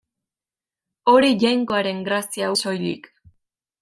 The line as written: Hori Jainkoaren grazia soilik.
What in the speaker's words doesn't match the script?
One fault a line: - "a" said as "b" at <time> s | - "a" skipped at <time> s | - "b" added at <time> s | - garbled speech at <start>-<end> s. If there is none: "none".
none